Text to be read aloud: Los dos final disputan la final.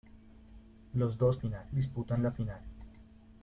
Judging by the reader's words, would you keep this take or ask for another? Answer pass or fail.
pass